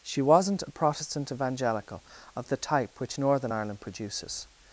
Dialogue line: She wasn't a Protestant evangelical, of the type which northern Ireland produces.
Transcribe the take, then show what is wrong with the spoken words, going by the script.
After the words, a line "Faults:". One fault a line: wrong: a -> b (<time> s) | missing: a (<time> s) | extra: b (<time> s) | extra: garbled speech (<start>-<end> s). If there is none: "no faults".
She wasn't a Protestant evangelical, of the type which northern Ireland produces.
Faults:
no faults